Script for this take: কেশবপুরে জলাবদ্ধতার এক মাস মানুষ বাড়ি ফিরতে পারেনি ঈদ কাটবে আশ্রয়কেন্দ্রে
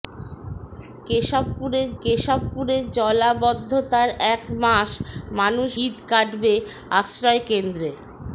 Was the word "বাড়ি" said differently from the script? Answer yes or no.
yes